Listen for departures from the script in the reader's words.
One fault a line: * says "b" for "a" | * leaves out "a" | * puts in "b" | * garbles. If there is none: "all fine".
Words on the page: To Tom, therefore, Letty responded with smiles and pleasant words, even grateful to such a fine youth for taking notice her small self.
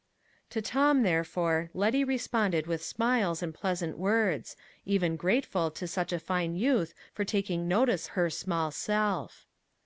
all fine